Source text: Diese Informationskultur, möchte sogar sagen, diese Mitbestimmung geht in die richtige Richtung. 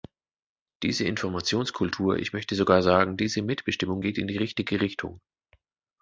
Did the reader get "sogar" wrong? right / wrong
right